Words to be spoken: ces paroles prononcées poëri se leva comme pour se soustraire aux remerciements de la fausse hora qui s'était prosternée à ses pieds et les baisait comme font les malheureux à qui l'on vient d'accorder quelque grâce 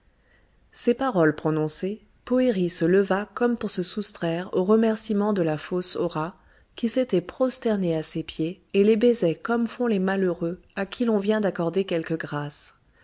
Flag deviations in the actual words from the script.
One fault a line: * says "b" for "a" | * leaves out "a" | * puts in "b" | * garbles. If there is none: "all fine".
all fine